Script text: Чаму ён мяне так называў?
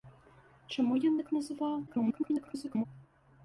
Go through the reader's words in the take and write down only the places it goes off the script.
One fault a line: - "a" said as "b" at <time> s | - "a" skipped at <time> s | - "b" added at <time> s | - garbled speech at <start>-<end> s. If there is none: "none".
- "мяне" skipped at 1.2 s
- garbled speech at 1.9-2.9 s